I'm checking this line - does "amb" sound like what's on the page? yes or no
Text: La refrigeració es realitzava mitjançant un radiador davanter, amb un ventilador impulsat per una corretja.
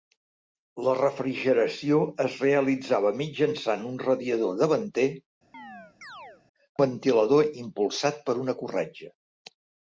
no